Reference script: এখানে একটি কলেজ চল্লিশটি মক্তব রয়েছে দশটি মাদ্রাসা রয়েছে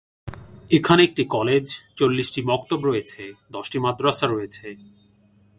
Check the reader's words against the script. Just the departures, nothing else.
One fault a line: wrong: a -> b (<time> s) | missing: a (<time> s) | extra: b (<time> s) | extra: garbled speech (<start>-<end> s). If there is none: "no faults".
no faults